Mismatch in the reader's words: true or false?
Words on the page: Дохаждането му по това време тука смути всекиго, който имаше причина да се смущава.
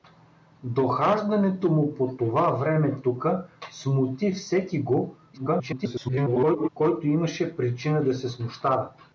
true